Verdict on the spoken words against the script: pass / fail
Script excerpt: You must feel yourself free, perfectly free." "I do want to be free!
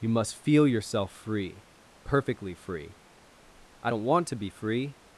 fail